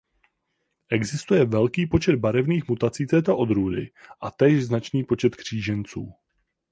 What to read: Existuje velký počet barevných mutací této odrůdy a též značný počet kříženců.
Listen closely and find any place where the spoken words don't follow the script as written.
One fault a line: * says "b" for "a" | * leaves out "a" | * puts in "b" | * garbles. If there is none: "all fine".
all fine